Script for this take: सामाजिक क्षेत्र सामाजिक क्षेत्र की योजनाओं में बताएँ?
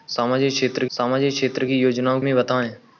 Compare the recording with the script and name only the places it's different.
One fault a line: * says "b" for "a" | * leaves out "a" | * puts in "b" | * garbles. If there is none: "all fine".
all fine